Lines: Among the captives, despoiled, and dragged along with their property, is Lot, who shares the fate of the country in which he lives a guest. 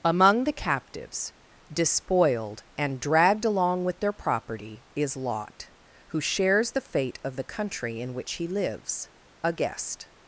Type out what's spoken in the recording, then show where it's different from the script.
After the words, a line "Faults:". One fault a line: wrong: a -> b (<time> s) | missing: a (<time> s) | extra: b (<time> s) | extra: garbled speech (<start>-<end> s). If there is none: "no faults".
Among the captives, despoiled, and dragged along with their property, is Lot, who shares the fate of the country in which he lives a guest.
Faults:
no faults